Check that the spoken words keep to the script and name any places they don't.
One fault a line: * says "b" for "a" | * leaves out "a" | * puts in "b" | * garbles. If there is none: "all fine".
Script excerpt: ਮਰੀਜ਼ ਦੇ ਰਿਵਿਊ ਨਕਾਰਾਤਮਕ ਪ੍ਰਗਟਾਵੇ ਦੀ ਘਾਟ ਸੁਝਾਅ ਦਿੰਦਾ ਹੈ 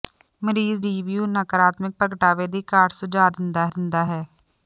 * leaves out "ਦੇ"
* puts in "ਦਿੰਦਾ"